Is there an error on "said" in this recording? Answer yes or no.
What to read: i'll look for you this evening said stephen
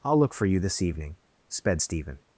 yes